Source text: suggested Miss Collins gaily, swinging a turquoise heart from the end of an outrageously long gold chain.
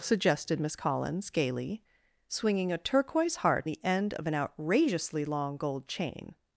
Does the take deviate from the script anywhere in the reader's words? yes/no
yes